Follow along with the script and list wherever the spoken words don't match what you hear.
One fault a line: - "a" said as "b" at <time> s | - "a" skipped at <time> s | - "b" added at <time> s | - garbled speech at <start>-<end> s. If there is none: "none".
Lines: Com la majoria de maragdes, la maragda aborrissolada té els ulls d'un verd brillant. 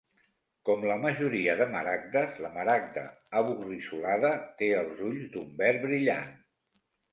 none